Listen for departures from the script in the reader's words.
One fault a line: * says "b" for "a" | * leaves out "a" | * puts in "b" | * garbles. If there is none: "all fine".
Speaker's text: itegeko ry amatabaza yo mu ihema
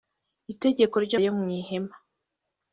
* leaves out "amatabaza"